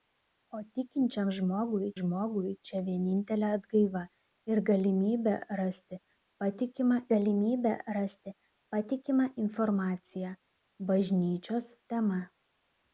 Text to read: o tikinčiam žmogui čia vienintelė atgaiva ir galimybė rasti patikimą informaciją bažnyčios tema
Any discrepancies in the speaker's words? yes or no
yes